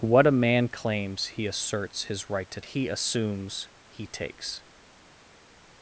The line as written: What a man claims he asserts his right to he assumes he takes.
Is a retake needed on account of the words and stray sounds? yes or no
no